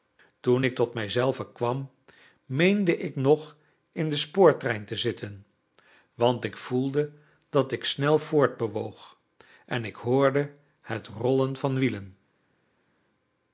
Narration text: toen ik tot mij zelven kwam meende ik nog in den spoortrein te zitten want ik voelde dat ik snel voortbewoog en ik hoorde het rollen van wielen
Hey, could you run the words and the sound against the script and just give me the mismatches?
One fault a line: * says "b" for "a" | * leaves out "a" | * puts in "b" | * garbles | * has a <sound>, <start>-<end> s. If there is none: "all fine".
all fine